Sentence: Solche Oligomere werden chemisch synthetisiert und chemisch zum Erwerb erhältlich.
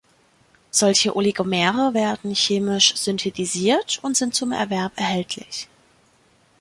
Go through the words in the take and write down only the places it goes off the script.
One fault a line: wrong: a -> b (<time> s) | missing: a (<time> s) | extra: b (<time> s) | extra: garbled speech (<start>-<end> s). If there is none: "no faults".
wrong: chemisch -> sind (4.1 s)